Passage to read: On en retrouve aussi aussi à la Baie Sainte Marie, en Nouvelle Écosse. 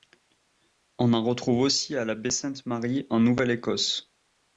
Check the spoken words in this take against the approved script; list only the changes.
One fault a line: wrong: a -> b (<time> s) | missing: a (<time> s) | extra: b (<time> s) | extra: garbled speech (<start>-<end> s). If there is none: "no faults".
missing: aussi (1.9 s)